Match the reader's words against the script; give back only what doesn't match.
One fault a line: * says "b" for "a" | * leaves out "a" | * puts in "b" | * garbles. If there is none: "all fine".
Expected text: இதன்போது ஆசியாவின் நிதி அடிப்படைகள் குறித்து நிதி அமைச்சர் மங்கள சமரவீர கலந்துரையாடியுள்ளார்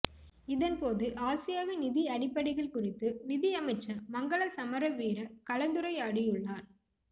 all fine